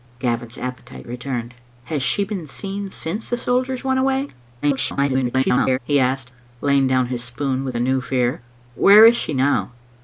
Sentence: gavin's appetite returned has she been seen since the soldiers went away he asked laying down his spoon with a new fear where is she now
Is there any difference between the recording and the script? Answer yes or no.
yes